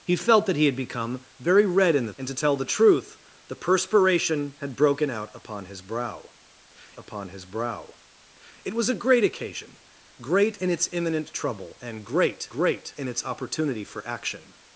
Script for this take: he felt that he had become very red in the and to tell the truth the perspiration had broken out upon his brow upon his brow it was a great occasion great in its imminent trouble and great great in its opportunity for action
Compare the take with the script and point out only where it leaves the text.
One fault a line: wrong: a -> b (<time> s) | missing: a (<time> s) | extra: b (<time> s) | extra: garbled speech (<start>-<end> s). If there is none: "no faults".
no faults